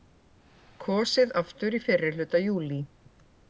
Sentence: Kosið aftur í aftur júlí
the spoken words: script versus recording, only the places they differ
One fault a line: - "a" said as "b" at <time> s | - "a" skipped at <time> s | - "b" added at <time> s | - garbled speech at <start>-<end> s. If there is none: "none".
- "aftur" said as "fyrrihluta" at 1.9 s